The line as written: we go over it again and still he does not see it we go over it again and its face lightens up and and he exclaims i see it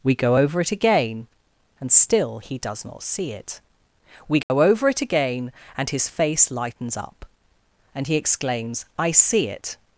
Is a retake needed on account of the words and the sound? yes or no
yes